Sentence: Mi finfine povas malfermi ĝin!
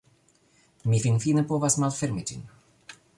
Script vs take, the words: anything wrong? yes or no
no